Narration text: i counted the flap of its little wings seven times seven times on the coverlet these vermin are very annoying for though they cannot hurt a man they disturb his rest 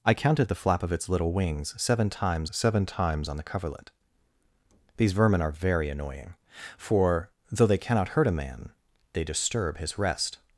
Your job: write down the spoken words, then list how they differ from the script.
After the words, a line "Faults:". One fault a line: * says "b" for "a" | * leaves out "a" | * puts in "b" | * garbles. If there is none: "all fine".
i counted the flap of its little wings seven times seven times on the coverlet these vermin are very annoying for though they cannot hurt a man they disturb his rest
Faults:
all fine